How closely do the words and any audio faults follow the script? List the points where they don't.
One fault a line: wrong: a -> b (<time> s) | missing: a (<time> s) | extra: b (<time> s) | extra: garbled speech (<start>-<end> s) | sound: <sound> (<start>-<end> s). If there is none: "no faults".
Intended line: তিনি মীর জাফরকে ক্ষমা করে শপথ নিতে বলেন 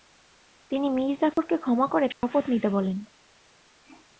sound: dropout (1.3-1.4 s)
sound: dropout (2.1-2.2 s)